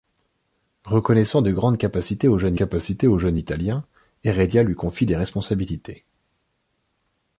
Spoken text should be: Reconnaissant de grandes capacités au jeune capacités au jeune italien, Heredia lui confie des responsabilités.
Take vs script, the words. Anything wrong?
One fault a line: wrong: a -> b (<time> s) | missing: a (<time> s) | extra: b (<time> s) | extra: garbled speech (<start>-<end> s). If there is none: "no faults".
no faults